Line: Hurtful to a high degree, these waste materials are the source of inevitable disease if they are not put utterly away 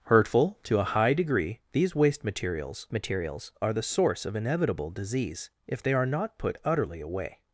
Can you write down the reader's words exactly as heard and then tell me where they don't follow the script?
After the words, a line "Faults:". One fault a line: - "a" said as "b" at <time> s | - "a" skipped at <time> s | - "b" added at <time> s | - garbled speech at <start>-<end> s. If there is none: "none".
Hurtful to a high degree, these waste materials materials are the source of inevitable disease if they are not put utterly away
Faults:
- "materials" added at 2.9 s